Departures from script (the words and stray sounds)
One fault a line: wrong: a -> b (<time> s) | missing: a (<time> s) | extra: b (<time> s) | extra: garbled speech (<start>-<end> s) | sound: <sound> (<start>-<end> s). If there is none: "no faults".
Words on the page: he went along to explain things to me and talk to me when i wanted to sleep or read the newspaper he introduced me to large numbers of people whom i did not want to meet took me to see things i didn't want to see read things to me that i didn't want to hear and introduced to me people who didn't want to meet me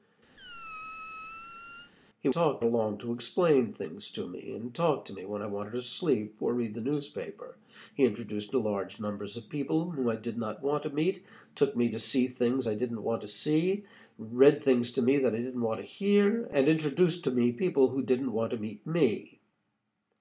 sound: squeak (0.4-1.9 s)
wrong: went -> talk (2.3 s)
missing: me (8.5 s)